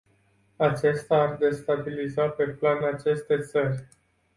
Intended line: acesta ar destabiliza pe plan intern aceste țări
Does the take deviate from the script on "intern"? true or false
true